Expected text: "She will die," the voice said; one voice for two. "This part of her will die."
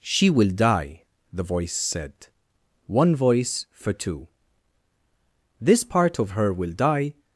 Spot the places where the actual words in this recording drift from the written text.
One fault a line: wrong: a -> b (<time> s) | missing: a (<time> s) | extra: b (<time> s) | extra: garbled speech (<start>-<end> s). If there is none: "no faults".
no faults